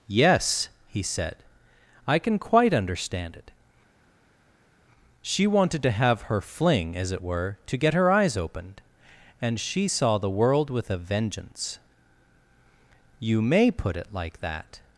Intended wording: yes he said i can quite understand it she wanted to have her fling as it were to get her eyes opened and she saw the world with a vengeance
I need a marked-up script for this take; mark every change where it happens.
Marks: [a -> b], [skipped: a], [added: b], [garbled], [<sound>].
yes he said i can quite understand it she wanted to have her fling as it were to get her eyes opened and she saw the world with a vengeance [added: you may put it like that]